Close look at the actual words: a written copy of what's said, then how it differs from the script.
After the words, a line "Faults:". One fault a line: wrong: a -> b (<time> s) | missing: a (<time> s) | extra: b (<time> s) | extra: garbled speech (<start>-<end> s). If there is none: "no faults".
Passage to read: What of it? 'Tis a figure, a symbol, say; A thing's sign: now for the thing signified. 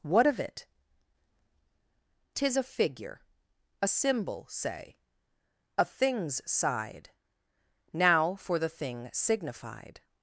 What of it? 'Tis a figure, a symbol, say; A thing's side: now for the thing signified.
Faults:
wrong: sign -> side (6.5 s)